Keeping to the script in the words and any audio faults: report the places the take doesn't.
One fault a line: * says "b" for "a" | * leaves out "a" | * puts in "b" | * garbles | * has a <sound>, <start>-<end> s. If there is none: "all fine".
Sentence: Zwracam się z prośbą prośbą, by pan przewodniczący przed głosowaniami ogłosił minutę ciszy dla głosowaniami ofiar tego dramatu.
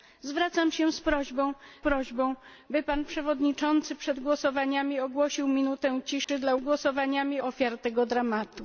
* has a dropout, 6.2-6.3 s